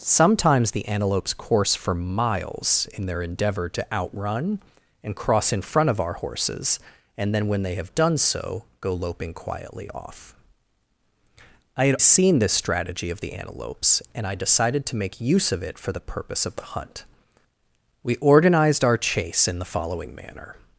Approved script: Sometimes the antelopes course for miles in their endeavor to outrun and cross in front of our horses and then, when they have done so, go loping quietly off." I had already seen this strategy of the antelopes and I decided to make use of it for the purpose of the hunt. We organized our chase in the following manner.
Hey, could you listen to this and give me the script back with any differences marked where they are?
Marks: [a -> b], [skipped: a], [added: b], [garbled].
Sometimes the antelopes course for miles in their endeavor to outrun and cross in front of our horses and then, when they have done so, go loping quietly off." I had [skipped: already] seen this strategy of the antelopes and I decided to make use of it for the purpose of the hunt. We organized our chase in the following manner.